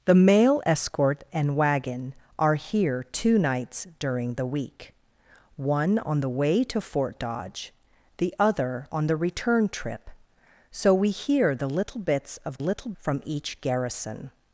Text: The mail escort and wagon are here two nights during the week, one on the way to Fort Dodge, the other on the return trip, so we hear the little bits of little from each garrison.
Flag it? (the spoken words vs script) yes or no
no